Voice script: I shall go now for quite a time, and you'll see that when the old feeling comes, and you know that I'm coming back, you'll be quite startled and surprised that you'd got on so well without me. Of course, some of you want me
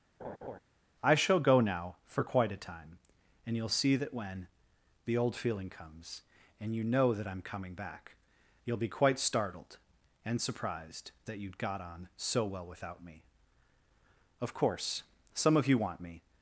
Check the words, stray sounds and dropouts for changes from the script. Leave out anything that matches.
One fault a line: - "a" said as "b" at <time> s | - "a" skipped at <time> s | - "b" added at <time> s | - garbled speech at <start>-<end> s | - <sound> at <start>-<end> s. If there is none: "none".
- laugh at 0.2-0.6 s